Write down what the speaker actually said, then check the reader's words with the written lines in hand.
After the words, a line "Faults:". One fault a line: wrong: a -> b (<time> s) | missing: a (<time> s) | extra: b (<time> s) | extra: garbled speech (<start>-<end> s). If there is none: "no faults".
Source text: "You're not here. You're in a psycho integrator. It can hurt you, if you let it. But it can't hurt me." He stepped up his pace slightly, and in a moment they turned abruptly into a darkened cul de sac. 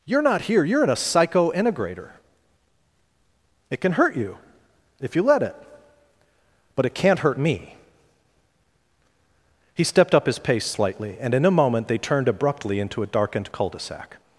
"You're not here. You're in a psycho integrator. It can hurt you, if you let it. But it can't hurt me." He stepped up his pace slightly, and in a moment they turned abruptly into a darkened cul de sac.
Faults:
no faults